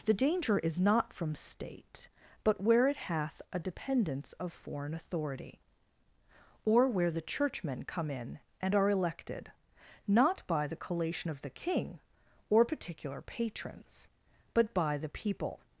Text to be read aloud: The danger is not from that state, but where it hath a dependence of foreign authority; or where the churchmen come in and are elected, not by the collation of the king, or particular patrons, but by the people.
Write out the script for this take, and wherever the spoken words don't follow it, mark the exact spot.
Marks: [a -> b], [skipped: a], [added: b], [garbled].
The danger is not from [skipped: that] state, but where it hath a dependence of foreign authority; or where the churchmen come in and are elected, not by the collation of the king, or particular patrons, but by the people.